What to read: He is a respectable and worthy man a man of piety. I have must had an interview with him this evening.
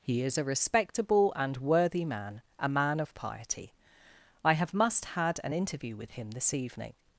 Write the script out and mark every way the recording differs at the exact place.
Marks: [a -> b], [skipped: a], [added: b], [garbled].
He is a respectable and worthy man a man of piety. I have must had an interview with him this evening.